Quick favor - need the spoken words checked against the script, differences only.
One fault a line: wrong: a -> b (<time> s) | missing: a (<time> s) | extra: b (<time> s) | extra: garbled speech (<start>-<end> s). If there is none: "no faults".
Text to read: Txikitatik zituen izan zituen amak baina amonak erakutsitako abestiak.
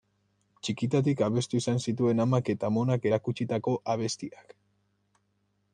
wrong: zituen -> abestu (1.2 s)
wrong: baina -> eta (2.5 s)